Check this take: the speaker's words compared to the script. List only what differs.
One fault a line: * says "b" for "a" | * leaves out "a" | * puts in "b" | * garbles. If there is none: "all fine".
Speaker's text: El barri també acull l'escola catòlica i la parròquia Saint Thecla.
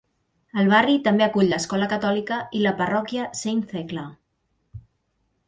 all fine